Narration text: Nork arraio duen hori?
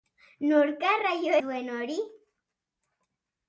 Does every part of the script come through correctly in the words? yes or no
yes